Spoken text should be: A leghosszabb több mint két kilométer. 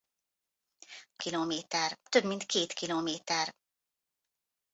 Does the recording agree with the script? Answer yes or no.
no